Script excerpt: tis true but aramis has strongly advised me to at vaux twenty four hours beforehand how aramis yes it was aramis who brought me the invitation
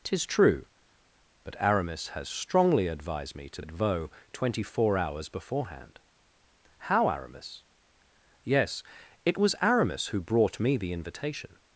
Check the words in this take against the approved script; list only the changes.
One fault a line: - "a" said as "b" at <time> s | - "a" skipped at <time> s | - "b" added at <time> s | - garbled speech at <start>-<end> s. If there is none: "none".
none